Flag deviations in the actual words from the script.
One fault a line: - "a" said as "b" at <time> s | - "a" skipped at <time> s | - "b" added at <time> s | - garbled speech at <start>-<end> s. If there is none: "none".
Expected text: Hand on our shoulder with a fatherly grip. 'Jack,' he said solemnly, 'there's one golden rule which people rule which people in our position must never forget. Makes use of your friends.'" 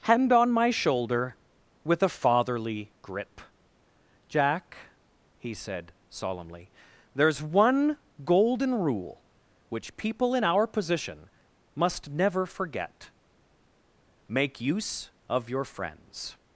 - "our" said as "my" at 0.5 s
- "rule which people" skipped at 10.3 s
- "Makes" said as "Make" at 14.3 s